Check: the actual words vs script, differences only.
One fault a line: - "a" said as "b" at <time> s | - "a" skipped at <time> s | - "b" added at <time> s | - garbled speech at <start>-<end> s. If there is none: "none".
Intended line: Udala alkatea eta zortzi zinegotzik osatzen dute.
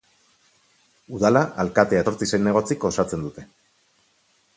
- "eta" skipped at 2.0 s